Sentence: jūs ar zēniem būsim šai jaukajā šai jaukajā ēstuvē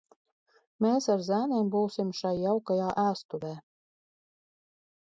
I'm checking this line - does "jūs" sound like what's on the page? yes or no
no